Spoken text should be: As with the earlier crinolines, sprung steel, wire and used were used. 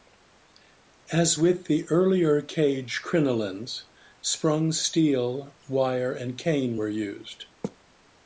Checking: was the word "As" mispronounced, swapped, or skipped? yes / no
no